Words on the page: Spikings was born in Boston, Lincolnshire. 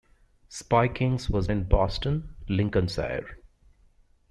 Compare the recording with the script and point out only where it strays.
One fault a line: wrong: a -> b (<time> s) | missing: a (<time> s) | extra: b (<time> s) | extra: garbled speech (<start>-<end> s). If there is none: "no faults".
missing: born (1.5 s)